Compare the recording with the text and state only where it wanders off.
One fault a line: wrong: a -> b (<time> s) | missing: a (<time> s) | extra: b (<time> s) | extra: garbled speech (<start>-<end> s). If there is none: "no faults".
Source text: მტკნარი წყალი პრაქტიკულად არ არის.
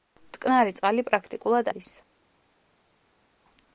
missing: არ (1.7 s)